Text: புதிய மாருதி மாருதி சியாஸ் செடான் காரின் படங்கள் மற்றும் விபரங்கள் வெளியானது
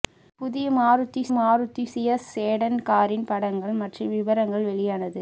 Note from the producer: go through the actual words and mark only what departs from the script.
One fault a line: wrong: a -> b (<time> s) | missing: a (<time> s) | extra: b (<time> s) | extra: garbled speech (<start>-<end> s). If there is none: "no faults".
no faults